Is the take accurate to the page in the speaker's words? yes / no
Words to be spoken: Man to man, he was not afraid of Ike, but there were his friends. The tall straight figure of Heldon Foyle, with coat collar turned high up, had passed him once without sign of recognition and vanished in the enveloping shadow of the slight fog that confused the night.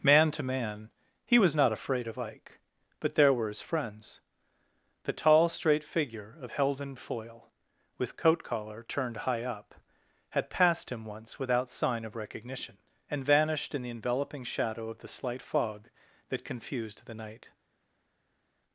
yes